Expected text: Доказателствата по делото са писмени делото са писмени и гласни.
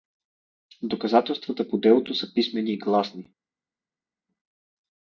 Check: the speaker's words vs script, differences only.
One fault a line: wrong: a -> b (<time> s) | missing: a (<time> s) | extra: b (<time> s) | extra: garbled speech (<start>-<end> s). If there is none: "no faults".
missing: делото са писмени (2.7 s)